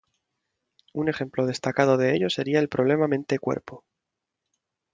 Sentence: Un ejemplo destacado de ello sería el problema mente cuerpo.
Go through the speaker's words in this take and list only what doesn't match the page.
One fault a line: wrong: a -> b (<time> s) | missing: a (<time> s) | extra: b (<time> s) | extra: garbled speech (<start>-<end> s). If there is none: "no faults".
no faults